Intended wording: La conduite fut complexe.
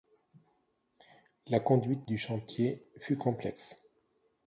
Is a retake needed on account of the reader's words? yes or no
yes